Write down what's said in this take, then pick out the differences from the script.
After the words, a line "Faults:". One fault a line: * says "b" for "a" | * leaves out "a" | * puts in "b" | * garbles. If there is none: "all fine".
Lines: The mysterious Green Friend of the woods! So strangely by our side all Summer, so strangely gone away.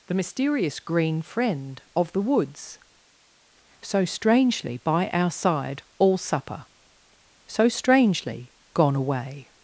The mysterious Green Friend of the woods! So strangely by our side all Supper, so strangely gone away.
Faults:
* says "Supper" for "Summer"